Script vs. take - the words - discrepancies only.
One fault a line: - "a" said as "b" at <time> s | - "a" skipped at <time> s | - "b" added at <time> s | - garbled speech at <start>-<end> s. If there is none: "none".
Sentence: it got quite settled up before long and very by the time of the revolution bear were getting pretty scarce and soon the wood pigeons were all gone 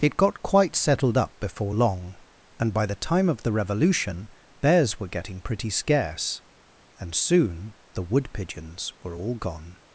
- "very" skipped at 2.7 s
- "bear" said as "bears" at 4.6 s